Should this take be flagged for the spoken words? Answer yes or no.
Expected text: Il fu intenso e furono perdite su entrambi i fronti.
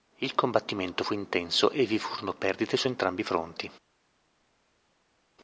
yes